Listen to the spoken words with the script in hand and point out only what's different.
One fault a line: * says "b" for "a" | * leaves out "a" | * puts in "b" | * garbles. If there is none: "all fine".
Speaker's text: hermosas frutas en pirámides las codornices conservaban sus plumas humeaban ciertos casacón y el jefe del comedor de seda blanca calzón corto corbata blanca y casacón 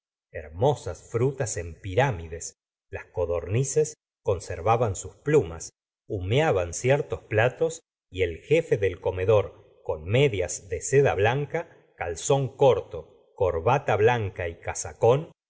* says "platos" for "casacón"
* puts in "con medias"